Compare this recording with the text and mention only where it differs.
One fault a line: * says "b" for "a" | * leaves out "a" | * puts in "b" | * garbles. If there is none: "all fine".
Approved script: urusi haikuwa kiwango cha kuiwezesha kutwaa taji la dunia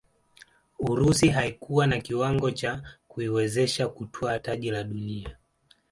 * puts in "na"